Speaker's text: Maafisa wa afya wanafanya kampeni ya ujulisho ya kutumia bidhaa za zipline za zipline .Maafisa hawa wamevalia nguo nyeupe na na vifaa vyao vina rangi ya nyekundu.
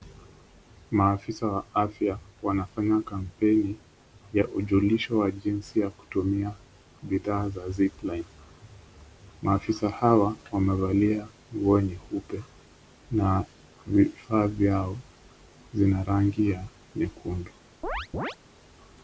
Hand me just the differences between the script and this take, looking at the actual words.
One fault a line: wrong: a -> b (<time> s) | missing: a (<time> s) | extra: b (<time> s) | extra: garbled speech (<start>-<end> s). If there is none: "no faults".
extra: wa jinsi (5.2 s)
missing: za zipline (8.2 s)
missing: na (13.4 s)